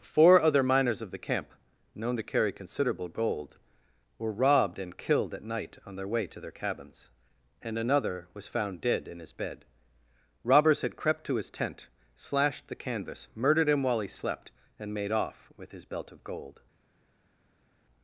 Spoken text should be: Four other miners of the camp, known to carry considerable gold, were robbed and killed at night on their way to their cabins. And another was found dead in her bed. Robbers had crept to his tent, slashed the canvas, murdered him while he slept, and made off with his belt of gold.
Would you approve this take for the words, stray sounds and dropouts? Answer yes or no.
no